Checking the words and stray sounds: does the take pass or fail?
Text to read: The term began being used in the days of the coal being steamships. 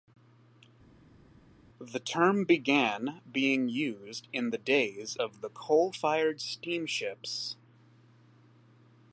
fail